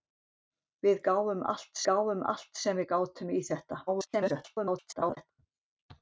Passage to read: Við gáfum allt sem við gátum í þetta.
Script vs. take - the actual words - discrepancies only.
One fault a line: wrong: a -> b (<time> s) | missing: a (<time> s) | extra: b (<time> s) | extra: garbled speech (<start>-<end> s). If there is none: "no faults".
extra: gáfum allt (1.9 s)
extra: garbled speech (3.9-5.3 s)